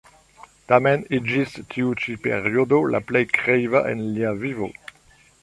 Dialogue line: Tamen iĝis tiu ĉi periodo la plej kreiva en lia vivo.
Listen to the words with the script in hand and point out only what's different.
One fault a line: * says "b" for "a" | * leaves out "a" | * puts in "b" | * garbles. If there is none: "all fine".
all fine